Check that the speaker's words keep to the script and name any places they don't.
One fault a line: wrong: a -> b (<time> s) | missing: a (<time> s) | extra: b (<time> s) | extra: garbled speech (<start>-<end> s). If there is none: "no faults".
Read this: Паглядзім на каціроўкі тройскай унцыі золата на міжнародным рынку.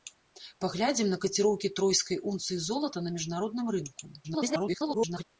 extra: garbled speech (4.2-5.2 s)